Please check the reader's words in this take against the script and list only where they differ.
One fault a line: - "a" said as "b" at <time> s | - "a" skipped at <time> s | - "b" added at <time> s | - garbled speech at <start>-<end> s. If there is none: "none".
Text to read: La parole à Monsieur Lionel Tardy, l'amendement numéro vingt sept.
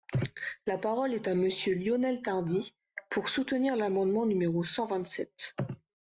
- "est" added at 1.1 s
- "pour soutenir" added at 3.1 s
- "cent" added at 4.6 s